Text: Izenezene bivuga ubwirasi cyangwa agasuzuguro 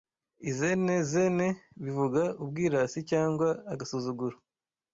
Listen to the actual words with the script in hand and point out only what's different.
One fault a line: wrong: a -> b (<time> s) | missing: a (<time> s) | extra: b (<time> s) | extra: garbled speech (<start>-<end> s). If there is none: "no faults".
no faults